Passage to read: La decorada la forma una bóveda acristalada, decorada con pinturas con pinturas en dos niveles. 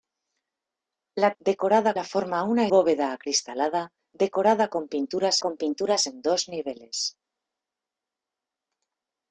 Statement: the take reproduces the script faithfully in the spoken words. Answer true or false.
true